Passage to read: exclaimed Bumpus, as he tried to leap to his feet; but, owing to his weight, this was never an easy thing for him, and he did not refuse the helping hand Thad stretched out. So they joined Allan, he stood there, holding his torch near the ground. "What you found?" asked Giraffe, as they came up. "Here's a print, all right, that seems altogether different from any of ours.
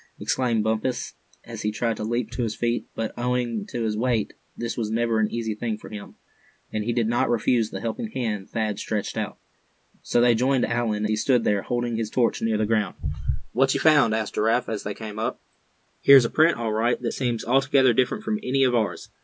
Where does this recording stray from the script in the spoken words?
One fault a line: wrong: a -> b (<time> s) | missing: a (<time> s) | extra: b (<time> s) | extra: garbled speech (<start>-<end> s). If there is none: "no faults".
no faults